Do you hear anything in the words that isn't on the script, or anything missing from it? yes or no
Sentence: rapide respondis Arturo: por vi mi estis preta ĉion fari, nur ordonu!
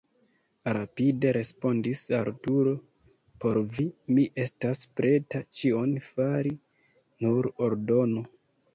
yes